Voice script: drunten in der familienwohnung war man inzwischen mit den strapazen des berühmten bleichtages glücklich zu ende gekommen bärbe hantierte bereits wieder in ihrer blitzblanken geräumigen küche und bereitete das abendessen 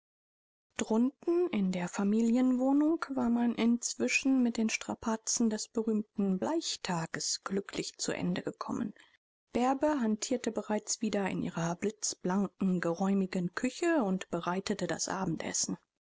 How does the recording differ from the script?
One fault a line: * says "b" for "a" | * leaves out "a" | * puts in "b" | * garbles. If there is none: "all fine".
all fine